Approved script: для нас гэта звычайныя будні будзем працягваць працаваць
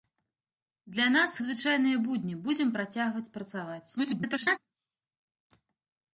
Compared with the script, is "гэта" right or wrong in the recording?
wrong